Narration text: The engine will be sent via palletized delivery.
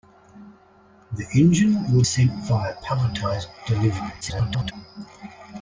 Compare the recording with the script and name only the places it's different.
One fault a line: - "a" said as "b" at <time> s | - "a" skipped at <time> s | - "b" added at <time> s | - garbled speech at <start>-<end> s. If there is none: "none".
- "be" skipped at 2.0 s
- garbled speech at 4.2-4.7 s